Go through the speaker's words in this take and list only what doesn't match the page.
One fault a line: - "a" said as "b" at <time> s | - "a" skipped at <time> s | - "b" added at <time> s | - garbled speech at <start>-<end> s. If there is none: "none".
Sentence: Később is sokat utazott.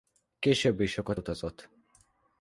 none